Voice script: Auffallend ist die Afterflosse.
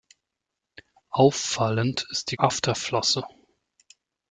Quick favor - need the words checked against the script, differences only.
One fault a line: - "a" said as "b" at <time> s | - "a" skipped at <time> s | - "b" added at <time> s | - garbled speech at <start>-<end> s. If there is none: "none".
none